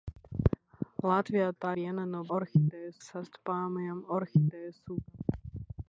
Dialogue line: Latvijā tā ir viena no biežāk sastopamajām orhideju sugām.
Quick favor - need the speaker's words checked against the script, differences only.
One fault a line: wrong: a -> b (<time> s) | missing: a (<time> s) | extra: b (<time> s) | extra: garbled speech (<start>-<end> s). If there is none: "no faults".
missing: ir (1.7 s)
wrong: biežāk -> orhideju (2.4 s)